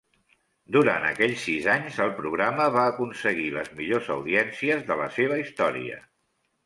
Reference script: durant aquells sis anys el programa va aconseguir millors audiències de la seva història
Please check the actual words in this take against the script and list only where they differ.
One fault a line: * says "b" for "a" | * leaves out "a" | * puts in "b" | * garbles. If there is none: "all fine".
* puts in "les"